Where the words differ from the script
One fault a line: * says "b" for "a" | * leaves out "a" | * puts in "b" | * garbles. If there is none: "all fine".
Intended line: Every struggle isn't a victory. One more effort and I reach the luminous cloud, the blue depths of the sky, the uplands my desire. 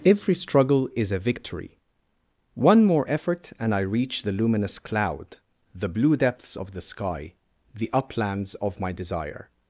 * says "is" for "isn't"
* puts in "of"